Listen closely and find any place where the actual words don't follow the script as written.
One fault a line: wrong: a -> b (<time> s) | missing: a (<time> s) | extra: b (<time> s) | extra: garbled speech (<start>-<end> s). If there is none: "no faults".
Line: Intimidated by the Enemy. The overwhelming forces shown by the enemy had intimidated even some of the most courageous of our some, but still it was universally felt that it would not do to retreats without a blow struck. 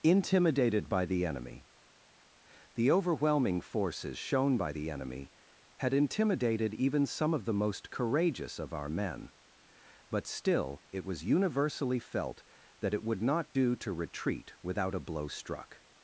wrong: some -> men (8.9 s)
wrong: retreats -> retreat (13.9 s)